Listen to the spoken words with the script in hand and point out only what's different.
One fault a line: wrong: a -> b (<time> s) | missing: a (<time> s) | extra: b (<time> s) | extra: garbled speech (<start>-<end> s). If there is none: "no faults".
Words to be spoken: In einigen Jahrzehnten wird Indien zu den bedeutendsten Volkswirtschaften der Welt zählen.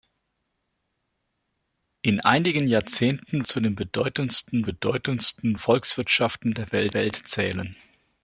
missing: wird Indien (3.5 s)
extra: bedeutendsten (4.6 s)
extra: Welt (6.9 s)